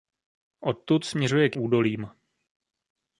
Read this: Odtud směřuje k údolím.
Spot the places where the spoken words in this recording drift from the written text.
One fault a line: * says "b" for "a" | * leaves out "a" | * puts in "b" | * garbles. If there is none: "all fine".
all fine